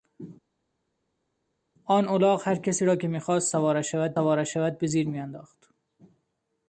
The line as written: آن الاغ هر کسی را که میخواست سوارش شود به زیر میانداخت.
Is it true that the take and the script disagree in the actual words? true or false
true